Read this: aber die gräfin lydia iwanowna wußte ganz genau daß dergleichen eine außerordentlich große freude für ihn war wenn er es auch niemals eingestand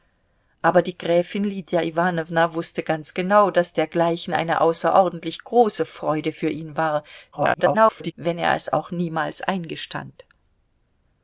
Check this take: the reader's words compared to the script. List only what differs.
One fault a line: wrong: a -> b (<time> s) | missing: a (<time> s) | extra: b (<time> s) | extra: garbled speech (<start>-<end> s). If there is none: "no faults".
extra: garbled speech (7.3-8.1 s)